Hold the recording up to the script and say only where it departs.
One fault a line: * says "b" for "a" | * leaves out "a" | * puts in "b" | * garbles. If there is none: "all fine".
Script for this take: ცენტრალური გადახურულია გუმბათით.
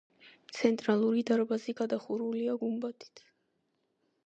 * puts in "დარბაზი"